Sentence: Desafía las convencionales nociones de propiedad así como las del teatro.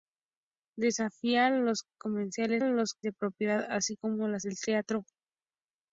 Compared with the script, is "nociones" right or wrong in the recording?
wrong